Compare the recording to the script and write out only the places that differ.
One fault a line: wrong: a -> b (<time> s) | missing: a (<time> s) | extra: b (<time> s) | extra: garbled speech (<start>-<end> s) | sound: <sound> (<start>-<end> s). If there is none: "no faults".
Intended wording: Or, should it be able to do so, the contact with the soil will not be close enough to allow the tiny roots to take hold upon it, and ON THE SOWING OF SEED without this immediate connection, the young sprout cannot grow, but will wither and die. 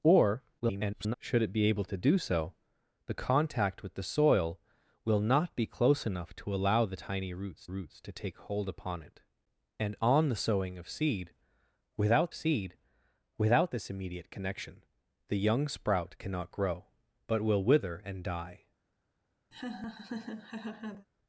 extra: garbled speech (0.6-1.1 s)
extra: roots (7.7 s)
extra: SEED without (12.3 s)
sound: laugh (19.5-21.1 s)